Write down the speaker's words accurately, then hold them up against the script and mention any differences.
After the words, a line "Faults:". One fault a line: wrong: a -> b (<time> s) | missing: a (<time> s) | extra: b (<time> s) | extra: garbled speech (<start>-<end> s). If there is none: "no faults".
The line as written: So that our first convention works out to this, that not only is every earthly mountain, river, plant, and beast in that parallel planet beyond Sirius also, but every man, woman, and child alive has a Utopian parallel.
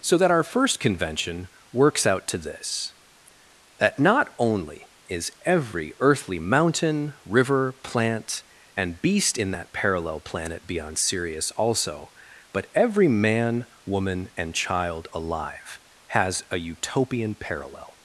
So that our first convention works out to this, that not only is every earthly mountain, river, plant, and beast in that parallel planet beyond Sirius also, but every man, woman, and child alive has a Utopian parallel.
Faults:
no faults